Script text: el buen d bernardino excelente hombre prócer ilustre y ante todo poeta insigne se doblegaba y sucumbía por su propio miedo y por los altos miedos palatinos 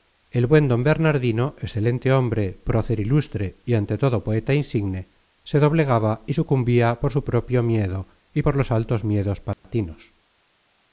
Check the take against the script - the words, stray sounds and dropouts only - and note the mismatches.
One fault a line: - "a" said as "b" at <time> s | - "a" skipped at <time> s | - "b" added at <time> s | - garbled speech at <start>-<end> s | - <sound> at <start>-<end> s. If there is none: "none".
- dropout at 9.5-9.6 s